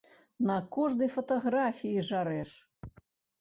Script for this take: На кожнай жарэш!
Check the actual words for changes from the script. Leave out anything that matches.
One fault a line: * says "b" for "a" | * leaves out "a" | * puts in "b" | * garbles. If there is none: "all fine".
* puts in "фатаграфіі"